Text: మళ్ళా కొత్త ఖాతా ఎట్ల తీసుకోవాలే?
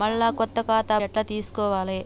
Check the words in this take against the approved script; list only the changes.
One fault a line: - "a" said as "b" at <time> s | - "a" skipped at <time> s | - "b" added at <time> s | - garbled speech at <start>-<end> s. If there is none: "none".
none